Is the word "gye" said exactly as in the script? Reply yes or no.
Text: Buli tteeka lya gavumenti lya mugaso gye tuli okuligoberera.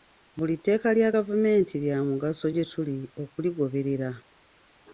yes